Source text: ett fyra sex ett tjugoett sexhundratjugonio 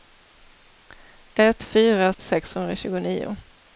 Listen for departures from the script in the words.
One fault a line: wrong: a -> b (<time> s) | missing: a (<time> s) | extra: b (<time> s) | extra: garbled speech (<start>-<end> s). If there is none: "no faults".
missing: sex ett tjugoett (2.1 s)